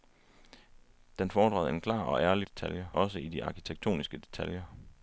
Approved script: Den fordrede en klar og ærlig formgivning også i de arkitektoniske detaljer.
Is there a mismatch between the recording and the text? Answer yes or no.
yes